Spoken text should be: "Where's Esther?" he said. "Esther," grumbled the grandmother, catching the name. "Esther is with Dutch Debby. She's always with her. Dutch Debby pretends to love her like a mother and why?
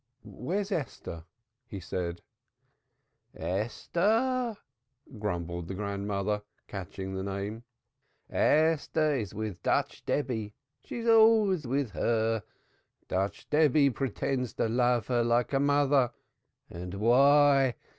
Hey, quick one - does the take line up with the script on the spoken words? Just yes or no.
yes